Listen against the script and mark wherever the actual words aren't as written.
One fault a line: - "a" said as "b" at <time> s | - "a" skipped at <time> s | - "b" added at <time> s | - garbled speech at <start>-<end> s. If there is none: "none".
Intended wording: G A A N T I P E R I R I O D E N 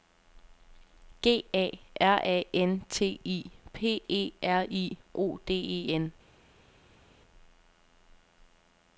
- "R" added at 2.0 s
- "R I" skipped at 4.9 s